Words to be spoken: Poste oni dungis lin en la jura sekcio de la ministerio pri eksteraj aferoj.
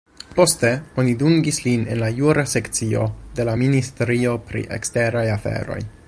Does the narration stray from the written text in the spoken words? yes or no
no